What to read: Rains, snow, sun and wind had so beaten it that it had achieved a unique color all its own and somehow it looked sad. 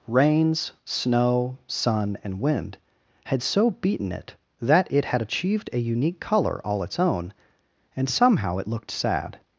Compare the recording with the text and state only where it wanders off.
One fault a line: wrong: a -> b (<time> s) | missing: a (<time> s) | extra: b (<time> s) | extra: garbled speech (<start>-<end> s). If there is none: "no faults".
no faults